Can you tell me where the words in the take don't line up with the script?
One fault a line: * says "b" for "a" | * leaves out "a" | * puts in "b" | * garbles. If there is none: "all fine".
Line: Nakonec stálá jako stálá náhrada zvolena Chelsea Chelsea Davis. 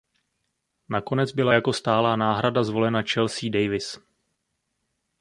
* says "byla" for "stálá"
* leaves out "Chelsea"